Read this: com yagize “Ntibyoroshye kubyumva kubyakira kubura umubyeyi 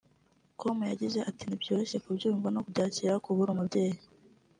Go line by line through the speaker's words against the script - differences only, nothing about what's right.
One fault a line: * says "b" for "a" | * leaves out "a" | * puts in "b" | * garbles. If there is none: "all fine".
* puts in "ati"
* puts in "no"